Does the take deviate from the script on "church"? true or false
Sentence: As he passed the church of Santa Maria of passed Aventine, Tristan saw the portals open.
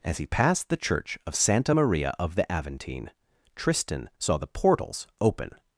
false